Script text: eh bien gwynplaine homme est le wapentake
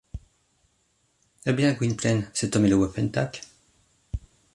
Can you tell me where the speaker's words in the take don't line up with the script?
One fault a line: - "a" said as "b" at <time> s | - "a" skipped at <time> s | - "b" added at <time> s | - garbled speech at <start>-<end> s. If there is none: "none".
- "cet" added at 2.3 s